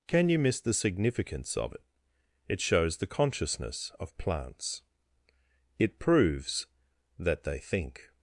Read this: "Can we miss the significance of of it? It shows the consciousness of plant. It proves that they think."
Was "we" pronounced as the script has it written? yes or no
no